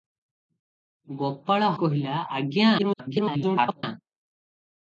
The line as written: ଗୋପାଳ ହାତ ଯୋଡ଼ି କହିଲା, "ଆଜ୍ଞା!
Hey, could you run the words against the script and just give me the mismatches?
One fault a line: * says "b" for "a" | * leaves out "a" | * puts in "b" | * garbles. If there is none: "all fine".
* leaves out "ହାତ ଯୋଡ଼ି"
* garbles